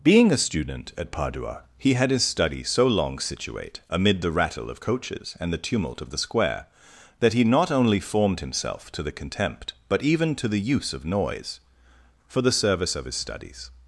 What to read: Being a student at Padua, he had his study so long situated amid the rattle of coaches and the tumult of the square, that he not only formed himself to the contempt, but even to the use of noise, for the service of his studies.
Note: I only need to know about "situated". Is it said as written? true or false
false